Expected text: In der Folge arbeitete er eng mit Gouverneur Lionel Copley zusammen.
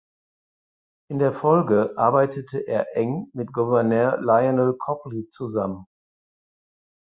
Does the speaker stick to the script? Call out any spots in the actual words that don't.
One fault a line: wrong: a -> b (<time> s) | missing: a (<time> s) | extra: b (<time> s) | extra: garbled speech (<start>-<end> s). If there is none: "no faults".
no faults